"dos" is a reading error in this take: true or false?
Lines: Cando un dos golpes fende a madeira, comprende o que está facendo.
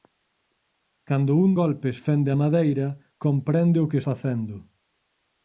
true